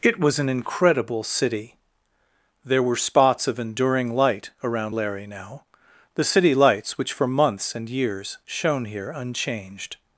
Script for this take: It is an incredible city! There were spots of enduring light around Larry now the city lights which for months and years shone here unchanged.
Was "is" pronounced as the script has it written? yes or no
no